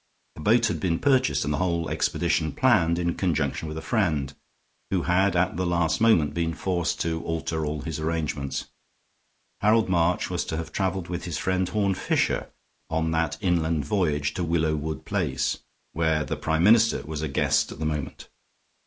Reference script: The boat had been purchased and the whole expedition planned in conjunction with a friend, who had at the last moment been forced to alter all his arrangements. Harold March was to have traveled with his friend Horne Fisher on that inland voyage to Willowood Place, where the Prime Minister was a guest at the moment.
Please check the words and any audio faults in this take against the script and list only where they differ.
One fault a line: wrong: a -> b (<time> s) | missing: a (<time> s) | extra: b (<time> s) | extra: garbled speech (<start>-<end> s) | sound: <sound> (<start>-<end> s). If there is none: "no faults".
no faults